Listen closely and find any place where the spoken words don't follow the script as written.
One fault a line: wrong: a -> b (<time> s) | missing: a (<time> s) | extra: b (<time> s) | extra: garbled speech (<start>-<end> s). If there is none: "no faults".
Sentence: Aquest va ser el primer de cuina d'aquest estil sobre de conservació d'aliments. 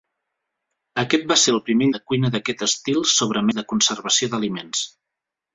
no faults